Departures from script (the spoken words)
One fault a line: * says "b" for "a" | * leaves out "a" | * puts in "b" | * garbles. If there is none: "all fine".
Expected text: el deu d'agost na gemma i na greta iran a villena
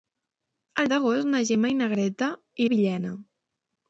* leaves out "deu"
* leaves out "iran"